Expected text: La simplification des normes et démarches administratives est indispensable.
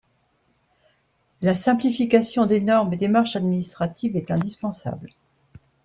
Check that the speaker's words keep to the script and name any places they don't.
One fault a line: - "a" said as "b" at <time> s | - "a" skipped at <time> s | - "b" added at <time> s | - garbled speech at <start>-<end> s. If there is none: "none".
none